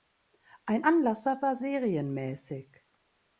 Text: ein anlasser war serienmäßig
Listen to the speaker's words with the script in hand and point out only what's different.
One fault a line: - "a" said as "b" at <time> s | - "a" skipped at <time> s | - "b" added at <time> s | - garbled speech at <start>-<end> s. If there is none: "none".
none